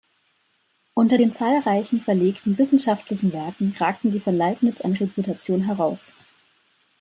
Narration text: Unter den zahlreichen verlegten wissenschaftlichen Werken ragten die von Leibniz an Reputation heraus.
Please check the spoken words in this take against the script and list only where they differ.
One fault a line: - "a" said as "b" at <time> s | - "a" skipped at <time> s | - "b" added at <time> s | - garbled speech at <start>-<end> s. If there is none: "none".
none